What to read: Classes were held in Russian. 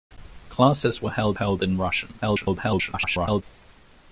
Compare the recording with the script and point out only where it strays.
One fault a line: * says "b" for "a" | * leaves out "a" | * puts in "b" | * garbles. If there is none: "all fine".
* puts in "held"
* garbles